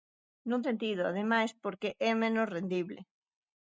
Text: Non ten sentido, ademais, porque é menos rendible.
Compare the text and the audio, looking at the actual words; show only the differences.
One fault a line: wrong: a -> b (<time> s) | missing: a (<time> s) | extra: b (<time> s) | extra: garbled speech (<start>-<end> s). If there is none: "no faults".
missing: ten (0.6 s)